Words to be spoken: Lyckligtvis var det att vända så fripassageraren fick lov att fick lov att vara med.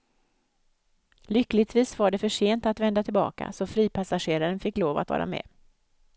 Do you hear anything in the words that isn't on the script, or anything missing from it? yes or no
yes